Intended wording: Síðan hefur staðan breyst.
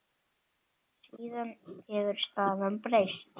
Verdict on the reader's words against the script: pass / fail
pass